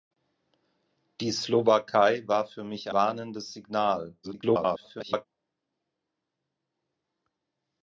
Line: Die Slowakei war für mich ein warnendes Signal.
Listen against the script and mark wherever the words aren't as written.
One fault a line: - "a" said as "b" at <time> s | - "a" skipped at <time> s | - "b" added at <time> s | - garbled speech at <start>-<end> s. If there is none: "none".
- "ein" skipped at 2.9 s
- garbled speech at 4.2-5.3 s